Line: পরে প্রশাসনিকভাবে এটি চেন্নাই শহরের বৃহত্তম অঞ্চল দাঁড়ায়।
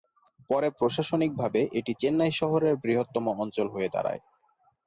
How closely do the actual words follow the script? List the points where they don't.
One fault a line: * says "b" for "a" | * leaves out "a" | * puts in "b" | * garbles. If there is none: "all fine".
* puts in "হয়ে"